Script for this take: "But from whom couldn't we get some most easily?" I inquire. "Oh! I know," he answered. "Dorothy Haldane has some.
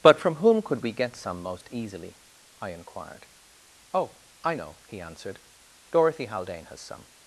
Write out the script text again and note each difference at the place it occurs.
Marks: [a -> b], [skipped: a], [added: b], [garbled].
"But from whom [couldn't -> could] we get some most easily?" I [inquire. -> inquired] "Oh! I know," he answered. "Dorothy Haldane has some.